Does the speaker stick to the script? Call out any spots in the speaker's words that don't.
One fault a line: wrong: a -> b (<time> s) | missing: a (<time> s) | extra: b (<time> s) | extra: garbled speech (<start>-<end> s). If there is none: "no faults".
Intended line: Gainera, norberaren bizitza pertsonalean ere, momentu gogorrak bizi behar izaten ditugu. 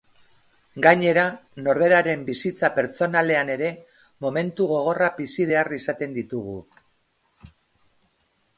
no faults